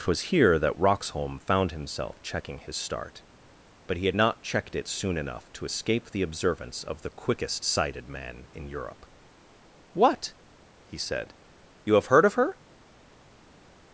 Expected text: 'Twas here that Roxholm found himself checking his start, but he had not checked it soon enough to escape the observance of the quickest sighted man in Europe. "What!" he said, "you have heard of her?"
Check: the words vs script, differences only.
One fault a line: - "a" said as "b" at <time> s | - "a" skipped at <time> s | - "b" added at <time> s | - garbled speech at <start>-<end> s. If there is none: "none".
none